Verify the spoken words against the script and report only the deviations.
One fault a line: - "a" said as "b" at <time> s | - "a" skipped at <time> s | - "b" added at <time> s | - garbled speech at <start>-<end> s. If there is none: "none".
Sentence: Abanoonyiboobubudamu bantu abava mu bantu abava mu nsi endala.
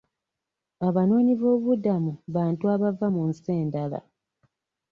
- "bantu abava mu" skipped at 3.2 s